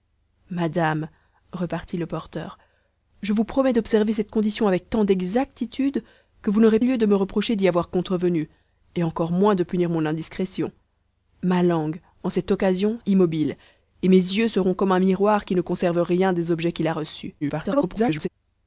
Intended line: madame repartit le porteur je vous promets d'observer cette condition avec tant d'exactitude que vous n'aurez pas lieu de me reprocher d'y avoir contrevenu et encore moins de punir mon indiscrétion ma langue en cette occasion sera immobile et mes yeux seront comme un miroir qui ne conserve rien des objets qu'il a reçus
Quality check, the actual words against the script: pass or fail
fail